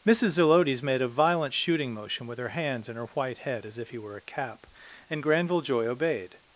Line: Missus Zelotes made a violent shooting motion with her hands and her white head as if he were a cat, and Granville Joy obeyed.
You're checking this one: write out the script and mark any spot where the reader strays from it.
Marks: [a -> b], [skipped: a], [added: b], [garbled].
Missus Zelotes made a violent shooting motion with her hands and her white head as if he were a [cat, -> cap] and Granville Joy obeyed.